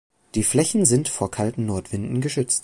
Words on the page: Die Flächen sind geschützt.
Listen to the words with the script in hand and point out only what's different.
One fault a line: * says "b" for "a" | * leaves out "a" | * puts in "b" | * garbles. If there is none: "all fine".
* puts in "vor kalten Nordwinden"